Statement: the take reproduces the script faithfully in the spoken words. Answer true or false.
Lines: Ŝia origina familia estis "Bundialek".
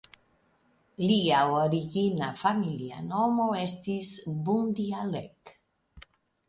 false